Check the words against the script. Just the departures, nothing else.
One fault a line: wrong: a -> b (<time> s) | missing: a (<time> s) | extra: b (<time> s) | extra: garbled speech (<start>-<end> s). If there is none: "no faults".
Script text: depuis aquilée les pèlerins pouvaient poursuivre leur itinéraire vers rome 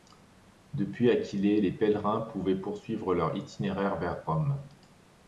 no faults